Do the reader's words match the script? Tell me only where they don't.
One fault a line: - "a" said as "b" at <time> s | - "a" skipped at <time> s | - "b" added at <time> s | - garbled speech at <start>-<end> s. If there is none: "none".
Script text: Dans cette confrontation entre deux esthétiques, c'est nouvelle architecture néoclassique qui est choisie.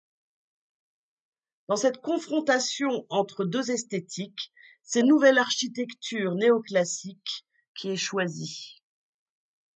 none